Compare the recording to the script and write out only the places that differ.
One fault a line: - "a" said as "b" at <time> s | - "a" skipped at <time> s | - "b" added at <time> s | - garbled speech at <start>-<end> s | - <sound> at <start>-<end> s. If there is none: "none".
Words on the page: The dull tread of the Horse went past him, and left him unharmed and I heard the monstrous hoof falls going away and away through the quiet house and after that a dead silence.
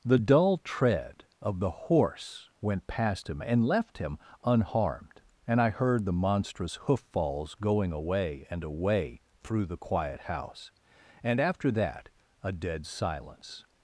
none